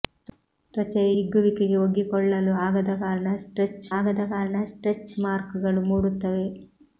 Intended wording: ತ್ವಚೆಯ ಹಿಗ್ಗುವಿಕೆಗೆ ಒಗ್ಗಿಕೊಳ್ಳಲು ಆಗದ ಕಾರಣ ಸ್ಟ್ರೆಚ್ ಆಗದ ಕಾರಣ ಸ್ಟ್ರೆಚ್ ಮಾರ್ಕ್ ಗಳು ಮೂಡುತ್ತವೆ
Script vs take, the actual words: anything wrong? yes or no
no